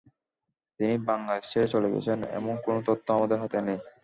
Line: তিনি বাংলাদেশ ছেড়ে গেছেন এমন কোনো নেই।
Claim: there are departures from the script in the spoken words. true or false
true